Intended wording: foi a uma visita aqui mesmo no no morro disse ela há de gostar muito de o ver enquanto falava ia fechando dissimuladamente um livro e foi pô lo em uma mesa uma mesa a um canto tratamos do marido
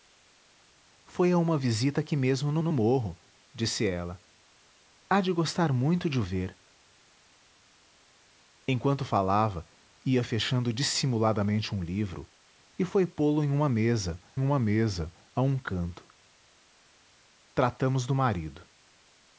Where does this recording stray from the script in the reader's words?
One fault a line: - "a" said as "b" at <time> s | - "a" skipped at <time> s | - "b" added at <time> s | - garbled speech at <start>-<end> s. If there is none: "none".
none